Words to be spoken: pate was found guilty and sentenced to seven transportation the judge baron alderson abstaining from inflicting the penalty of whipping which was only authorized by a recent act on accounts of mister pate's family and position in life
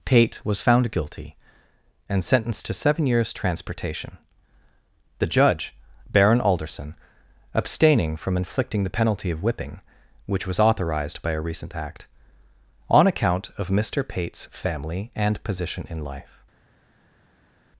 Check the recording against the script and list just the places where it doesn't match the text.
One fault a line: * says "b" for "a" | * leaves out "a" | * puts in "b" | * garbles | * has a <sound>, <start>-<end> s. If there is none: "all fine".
* puts in "years"
* leaves out "only"
* says "account" for "accounts"